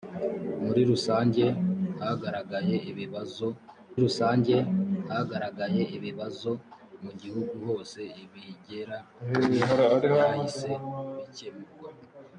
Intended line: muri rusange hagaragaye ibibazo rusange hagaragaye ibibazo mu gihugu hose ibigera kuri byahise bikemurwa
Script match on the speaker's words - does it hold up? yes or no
yes